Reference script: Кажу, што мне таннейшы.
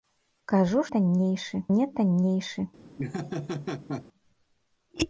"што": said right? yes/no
no